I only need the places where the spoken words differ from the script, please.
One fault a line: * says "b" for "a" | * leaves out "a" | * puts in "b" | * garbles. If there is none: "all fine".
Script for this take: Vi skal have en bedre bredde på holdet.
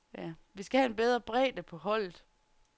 all fine